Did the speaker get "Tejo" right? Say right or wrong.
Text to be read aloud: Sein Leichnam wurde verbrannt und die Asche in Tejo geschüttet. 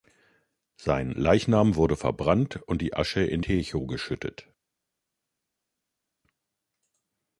right